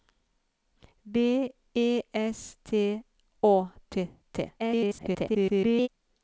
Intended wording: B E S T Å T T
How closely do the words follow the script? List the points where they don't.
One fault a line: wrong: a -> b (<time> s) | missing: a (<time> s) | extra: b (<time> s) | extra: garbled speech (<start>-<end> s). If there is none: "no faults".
extra: garbled speech (4.6-5.9 s)